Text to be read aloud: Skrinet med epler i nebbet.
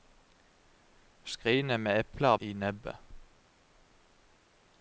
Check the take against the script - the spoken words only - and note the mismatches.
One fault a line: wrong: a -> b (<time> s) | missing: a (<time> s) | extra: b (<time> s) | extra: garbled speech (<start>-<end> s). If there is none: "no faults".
no faults